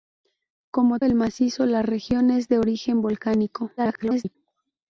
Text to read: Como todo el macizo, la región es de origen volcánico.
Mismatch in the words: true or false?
true